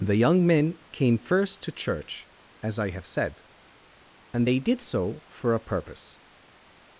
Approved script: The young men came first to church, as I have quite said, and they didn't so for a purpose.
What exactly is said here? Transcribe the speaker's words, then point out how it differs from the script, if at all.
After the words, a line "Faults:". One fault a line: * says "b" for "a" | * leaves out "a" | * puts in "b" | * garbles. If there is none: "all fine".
The young men came first to church, as I have said, and they did so for a purpose.
Faults:
* leaves out "quite"
* says "did" for "didn't"